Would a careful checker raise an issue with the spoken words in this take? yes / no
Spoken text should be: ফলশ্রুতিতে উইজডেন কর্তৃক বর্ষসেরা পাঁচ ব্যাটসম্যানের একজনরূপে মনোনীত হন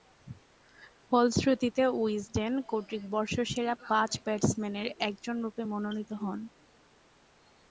no